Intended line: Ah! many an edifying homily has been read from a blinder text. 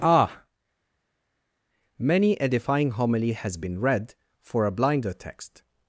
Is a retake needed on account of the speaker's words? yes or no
yes